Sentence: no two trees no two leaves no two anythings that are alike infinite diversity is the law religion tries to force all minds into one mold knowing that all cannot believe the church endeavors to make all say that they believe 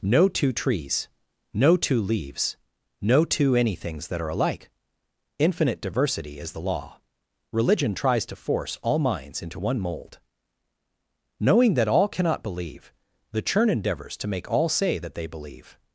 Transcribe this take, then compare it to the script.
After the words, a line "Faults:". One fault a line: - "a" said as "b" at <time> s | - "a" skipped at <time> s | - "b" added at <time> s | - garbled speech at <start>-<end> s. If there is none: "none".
no two trees no two leaves no two anythings that are alike infinite diversity is the law religion tries to force all minds into one mold knowing that all cannot believe the churn endeavors to make all say that they believe
Faults:
- "church" said as "churn" at 13.4 s